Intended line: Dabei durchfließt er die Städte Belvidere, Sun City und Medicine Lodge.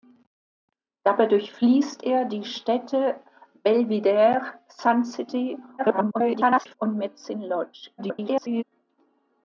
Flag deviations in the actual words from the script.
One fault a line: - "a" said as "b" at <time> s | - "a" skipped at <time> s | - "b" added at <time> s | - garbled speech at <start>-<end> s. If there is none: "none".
- garbled speech at 5.8-6.7 s
- garbled speech at 8.0-8.6 s